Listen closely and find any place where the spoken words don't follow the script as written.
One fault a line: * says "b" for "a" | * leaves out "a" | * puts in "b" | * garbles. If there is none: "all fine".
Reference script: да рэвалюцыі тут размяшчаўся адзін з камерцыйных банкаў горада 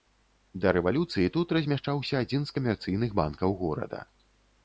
all fine